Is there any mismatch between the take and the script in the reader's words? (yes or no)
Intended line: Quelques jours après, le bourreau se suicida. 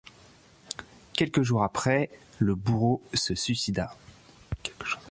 no